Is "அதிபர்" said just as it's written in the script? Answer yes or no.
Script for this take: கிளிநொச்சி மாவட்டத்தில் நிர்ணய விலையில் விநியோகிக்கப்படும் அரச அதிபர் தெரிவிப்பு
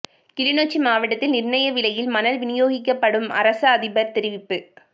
yes